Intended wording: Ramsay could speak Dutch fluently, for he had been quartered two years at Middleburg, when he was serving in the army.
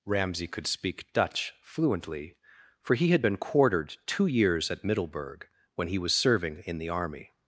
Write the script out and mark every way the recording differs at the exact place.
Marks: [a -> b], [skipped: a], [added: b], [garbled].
Ramsay could speak Dutch fluently, for he had been quartered two years at Middleburg, when he was serving in the army.